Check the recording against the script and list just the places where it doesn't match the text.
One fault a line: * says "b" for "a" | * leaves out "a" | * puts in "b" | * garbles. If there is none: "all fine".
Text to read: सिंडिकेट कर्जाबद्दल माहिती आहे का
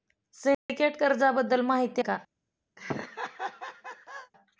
* leaves out "आहे"